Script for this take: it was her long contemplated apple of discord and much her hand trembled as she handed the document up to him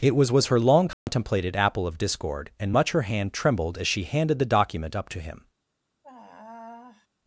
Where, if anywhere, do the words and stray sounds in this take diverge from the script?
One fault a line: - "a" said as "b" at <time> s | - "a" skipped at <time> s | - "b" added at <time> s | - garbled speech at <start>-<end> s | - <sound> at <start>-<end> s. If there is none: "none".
- "was" added at 0.3 s
- dropout at 0.9-1.1 s
- sigh at 6.0-7.1 s